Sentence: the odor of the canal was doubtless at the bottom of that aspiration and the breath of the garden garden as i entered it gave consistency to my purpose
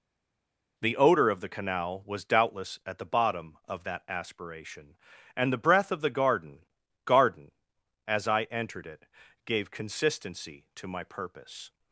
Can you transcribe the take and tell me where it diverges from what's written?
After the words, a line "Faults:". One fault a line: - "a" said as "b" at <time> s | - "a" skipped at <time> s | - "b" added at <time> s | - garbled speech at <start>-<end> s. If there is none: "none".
the odor of the canal was doubtless at the bottom of that aspiration and the breath of the garden garden as i entered it gave consistency to my purpose
Faults:
none